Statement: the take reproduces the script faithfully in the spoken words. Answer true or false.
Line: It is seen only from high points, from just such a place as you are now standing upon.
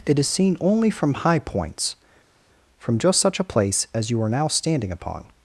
true